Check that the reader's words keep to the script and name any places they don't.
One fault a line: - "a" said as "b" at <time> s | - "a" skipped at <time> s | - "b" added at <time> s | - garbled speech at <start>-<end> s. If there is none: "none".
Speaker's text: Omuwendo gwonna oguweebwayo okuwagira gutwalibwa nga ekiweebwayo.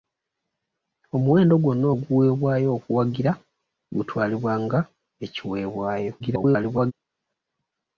- garbled speech at 6.2-6.9 s